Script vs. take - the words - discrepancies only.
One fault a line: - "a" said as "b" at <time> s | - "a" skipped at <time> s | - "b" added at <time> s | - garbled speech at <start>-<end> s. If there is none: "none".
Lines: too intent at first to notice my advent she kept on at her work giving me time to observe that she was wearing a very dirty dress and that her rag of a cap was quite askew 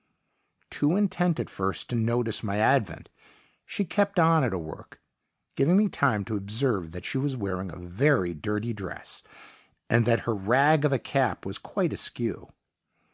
none